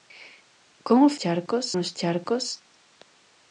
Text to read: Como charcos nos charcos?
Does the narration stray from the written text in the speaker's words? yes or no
no